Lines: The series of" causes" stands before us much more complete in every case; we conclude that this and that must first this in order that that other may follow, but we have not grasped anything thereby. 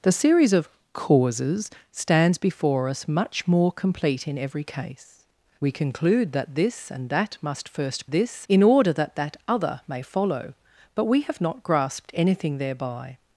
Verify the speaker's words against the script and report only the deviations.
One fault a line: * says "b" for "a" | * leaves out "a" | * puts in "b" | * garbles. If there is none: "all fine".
all fine